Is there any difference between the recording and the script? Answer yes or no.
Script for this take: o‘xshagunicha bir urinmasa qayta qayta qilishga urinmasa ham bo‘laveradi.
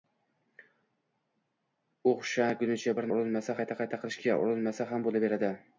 no